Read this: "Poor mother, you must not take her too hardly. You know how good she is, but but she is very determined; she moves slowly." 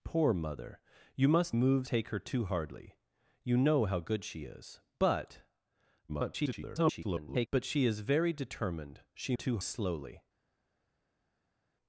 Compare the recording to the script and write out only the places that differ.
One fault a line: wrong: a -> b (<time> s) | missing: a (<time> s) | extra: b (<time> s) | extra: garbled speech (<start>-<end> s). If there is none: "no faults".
wrong: not -> moves (1.5 s)
extra: garbled speech (6.1-7.5 s)
wrong: moves -> too (9.3 s)